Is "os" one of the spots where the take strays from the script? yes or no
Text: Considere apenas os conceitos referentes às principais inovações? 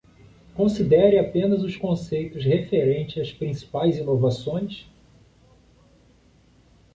no